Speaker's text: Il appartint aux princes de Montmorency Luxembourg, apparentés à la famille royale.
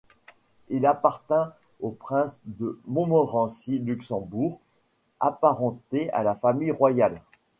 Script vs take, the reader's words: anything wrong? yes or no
no